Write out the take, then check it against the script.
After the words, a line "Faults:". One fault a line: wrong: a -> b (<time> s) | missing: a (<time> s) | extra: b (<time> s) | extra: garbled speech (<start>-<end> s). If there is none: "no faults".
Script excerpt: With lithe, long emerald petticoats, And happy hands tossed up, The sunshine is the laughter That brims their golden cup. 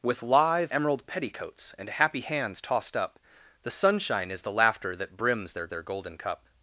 With lithe, emerald petticoats, And happy hands tossed up, The sunshine is the laughter That brims their their golden cup.
Faults:
missing: long (0.7 s)
extra: their (5.7 s)